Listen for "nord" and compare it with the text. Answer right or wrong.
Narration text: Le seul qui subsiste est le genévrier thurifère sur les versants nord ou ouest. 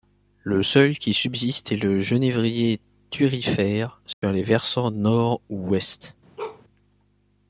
right